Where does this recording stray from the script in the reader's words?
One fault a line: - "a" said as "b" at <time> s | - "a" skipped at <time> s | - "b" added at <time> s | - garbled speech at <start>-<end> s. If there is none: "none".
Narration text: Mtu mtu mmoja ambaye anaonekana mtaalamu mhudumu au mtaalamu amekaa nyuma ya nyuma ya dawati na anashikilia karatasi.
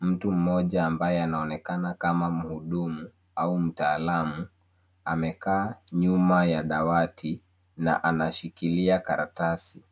- "mtu" skipped at 0.3 s
- "mtaalamu" said as "kama" at 1.9 s
- "nyuma ya" skipped at 6.6 s